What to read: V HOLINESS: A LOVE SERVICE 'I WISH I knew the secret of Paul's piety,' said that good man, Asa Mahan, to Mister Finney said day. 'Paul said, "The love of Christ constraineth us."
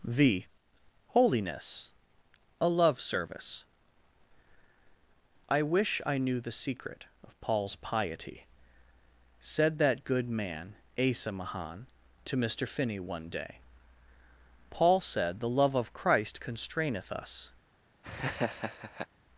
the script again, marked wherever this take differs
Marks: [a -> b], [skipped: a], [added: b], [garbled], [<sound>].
V HOLINESS: A LOVE SERVICE 'I WISH I knew the secret of Paul's piety,' said that good man, Asa Mahan, to Mister Finney [said -> one] day. 'Paul said, "The love of Christ constraineth us." [laugh]